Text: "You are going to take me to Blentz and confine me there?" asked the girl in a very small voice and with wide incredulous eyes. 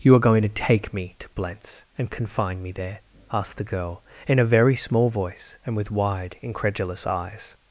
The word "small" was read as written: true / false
true